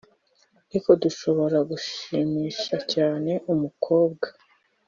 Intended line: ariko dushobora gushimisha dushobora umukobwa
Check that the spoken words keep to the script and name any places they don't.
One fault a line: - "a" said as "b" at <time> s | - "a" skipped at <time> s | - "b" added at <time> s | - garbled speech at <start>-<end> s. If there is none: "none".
- "dushobora" said as "cyane" at 2.9 s